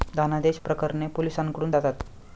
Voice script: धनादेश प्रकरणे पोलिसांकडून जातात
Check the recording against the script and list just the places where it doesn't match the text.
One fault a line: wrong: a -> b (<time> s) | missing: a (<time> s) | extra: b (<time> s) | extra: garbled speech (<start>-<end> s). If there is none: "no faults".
no faults